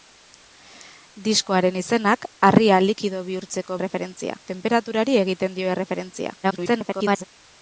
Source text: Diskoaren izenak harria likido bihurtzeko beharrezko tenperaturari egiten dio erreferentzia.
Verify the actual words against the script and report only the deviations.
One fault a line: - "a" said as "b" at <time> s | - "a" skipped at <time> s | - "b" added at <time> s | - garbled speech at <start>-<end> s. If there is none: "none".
- "beharrezko" said as "erreferentzia" at 3.8 s
- garbled speech at 6.4-7.2 s